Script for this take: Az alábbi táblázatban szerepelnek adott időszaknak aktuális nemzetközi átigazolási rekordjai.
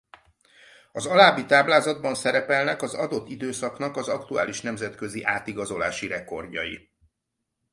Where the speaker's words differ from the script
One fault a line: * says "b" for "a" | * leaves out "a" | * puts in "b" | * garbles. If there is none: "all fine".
* puts in "az"
* puts in "az"